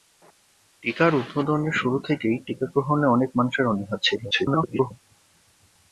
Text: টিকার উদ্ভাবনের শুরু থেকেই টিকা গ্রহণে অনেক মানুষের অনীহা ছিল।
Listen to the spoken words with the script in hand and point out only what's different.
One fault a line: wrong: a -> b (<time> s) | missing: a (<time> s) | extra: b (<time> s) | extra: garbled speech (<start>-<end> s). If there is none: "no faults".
extra: garbled speech (4.3-4.9 s)